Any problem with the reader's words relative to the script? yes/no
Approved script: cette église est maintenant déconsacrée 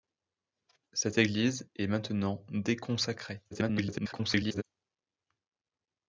yes